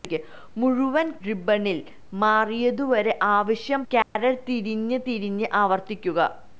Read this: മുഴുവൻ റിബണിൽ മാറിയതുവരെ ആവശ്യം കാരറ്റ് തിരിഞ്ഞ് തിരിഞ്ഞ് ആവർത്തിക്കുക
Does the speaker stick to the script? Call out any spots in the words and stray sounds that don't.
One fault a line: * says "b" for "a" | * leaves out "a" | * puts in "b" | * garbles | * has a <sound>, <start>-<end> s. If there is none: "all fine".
* has a dropout, 4.0-4.2 s